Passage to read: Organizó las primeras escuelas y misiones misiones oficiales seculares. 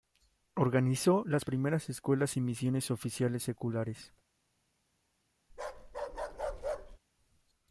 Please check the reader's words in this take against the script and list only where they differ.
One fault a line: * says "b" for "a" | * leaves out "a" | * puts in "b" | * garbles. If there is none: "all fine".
* leaves out "misiones"